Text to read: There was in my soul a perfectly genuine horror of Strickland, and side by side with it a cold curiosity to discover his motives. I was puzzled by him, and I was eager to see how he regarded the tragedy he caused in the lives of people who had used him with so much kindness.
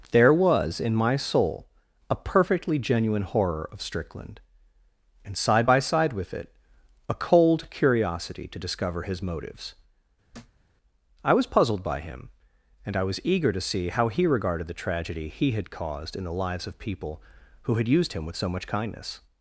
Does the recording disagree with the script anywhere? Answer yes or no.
yes